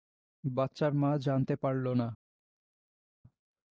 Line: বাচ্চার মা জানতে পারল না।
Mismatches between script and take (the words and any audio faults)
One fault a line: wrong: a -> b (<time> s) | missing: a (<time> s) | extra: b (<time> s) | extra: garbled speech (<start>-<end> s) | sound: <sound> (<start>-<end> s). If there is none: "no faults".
no faults